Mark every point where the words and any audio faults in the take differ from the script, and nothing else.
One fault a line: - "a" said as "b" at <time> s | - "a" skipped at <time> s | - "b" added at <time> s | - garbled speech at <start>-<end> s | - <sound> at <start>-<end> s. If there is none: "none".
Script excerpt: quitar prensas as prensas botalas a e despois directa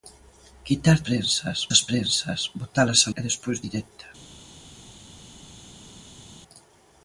none